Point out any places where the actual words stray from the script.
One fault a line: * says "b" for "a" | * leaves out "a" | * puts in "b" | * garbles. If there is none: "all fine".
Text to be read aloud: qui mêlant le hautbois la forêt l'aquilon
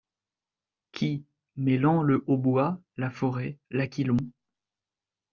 all fine